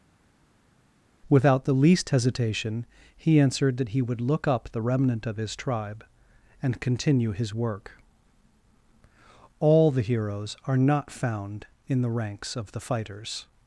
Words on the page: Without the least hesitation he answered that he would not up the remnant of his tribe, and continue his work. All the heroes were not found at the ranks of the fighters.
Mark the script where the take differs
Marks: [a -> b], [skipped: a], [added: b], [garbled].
Without the least hesitation he answered that he would [not -> look] up the remnant of his tribe, and continue his work. All the heroes [were -> are] not found [at -> in] the ranks of the fighters.